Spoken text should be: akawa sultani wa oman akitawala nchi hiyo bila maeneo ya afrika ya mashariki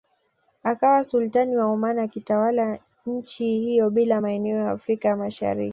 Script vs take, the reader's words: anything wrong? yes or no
no